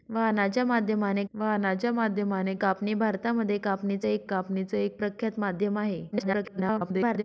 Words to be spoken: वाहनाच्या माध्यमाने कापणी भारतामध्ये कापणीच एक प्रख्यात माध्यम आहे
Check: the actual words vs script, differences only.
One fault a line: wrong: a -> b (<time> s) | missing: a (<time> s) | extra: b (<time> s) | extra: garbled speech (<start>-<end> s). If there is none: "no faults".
extra: वाहनाच्या माध्यमाने (1.3 s)
extra: कापणीच एक (4.2 s)
extra: garbled speech (6.1-7.2 s)